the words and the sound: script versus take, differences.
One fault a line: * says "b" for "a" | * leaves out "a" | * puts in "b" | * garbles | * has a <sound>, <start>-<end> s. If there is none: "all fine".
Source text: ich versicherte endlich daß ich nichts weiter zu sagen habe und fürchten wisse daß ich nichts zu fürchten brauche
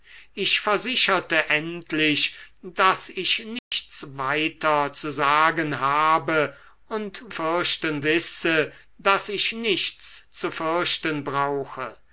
* has a dropout, 3.6-3.7 s